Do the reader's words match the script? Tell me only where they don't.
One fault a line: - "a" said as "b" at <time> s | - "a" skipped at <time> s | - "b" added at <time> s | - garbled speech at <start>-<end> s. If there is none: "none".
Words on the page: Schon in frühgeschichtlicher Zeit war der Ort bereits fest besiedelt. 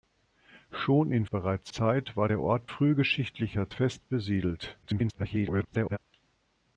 - "frühgeschichtlicher" said as "bereits" at 1.3 s
- "bereits" said as "frühgeschichtlicher" at 2.7 s
- garbled speech at 4.8-6.0 s